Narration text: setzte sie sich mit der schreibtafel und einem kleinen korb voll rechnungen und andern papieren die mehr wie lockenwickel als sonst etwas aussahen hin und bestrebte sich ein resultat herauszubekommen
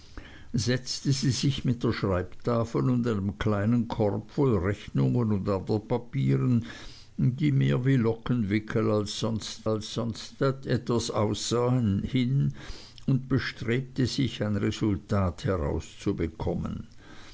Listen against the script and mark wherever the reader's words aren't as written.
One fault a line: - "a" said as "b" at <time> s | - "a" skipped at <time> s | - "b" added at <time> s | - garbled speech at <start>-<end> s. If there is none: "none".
- "als sonst" added at 9.6 s